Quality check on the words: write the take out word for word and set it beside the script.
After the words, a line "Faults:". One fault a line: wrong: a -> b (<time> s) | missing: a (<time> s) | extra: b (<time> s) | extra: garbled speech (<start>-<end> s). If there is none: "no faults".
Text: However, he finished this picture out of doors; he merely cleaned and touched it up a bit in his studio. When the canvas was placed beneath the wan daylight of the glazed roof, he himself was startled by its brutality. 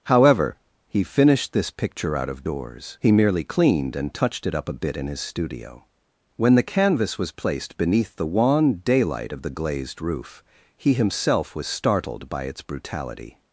However, he finished this picture out of doors; he merely cleaned and touched it up a bit in his studio. When the canvas was placed beneath the wan daylight of the glazed roof, he himself was startled by its brutality.
Faults:
no faults